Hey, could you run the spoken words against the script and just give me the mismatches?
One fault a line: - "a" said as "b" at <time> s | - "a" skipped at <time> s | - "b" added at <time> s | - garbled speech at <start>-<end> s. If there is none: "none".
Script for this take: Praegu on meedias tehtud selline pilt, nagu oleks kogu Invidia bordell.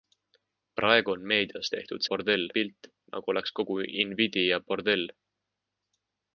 - "selline" said as "bordell" at 2.1 s